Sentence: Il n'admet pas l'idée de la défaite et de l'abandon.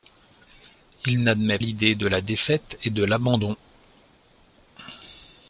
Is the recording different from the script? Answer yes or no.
yes